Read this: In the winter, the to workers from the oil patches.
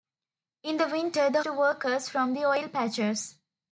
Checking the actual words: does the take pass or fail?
pass